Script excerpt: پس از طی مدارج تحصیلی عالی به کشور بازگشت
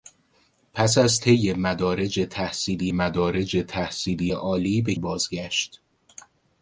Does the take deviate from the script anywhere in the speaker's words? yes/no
yes